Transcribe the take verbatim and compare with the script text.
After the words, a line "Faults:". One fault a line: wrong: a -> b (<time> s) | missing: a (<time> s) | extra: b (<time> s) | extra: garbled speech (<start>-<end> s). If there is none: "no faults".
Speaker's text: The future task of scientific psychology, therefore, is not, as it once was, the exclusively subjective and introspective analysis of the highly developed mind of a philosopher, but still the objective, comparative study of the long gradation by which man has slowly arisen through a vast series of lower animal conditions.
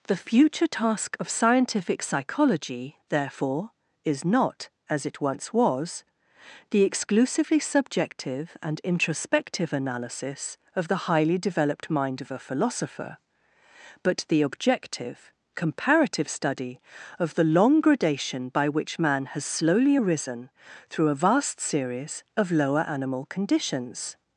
The future task of scientific psychology, therefore, is not, as it once was, the exclusively subjective and introspective analysis of the highly developed mind of a philosopher, but the objective, comparative study of the long gradation by which man has slowly arisen through a vast series of lower animal conditions.
Faults:
missing: still (14.2 s)